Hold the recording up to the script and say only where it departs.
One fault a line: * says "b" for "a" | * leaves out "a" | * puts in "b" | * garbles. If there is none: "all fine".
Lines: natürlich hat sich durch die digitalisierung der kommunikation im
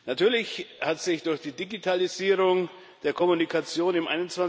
all fine